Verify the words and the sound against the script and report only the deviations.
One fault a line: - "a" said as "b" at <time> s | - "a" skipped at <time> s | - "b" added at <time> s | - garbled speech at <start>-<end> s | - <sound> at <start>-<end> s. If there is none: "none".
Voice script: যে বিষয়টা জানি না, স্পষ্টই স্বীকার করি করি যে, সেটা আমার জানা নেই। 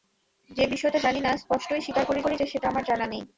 none